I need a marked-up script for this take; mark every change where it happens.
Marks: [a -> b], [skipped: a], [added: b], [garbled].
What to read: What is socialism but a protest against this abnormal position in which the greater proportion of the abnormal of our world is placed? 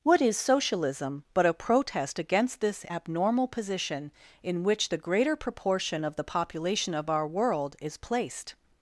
What is socialism but a protest against this abnormal position in which the greater proportion of the [abnormal -> population] of our world is placed?